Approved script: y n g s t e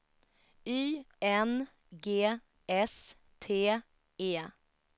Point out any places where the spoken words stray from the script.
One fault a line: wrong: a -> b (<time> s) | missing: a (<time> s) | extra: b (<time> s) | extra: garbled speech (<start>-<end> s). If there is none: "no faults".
no faults